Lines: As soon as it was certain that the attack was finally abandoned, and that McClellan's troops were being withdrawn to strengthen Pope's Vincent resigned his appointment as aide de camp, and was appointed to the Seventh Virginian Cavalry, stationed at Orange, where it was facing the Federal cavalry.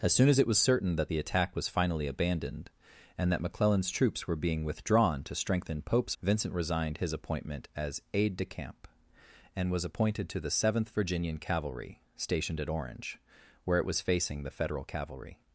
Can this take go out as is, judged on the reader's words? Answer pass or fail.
pass